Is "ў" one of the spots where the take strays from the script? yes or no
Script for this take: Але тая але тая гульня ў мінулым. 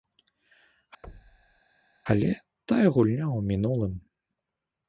no